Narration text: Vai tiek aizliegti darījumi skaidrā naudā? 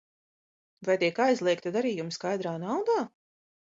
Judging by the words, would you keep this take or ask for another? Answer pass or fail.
pass